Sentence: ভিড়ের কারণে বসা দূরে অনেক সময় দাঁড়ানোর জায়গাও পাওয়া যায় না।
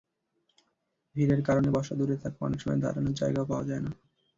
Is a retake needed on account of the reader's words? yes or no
yes